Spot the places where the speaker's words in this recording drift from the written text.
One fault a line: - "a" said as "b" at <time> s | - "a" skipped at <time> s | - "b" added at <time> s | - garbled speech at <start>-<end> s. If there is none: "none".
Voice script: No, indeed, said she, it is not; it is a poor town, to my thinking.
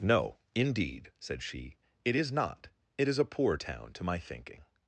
none